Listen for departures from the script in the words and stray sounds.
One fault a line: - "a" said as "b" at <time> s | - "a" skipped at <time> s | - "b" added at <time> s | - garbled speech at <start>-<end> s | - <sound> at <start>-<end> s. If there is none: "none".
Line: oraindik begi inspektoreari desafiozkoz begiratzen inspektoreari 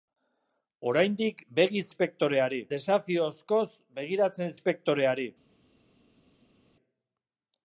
none